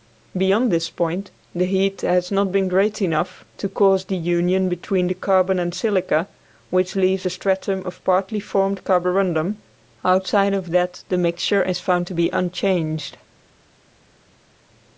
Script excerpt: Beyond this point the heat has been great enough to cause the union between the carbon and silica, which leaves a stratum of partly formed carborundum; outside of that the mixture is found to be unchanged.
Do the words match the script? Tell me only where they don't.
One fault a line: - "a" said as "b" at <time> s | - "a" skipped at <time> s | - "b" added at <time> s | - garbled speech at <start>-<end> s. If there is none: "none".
- "not" added at 2.3 s